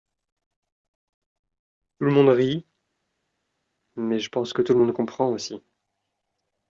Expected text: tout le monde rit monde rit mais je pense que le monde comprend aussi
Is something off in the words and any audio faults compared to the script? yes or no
yes